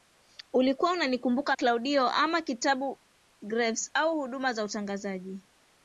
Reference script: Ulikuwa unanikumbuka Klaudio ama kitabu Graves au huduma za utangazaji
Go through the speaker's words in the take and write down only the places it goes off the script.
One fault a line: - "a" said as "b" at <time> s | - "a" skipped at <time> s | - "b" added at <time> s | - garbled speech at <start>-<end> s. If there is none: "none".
none